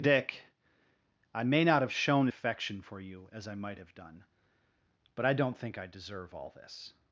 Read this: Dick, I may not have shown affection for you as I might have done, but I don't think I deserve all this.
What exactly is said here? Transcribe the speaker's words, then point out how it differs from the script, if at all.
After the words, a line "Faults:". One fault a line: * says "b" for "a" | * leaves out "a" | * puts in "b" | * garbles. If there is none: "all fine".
Dick, I may not have shown affection for you as I might have done, but I don't think I deserve all this.
Faults:
all fine